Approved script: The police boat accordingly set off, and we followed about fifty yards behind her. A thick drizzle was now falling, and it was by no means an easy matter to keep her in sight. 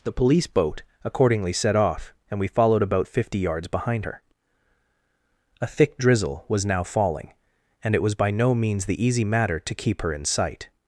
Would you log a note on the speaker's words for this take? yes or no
yes